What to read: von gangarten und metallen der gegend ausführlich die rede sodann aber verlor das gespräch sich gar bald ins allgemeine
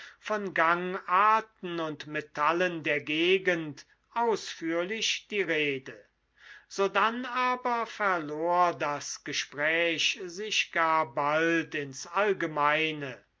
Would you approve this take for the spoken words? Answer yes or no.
yes